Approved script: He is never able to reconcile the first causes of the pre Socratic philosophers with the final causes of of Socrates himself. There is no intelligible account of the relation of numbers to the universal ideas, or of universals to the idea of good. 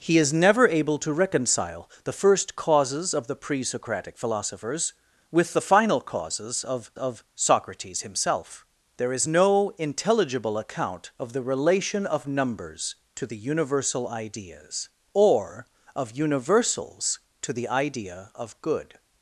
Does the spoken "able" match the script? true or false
true